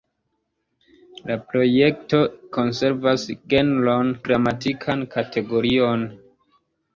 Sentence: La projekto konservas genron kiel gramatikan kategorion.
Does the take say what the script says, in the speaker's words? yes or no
no